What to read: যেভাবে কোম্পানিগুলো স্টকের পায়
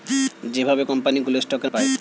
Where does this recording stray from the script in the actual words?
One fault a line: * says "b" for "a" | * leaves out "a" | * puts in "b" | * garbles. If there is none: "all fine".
all fine